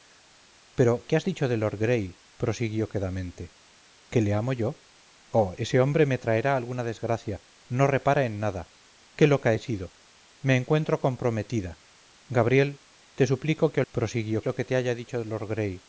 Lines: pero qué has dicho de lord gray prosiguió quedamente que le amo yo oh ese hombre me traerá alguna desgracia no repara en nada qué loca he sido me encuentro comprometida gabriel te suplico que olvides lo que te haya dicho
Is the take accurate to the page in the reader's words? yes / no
no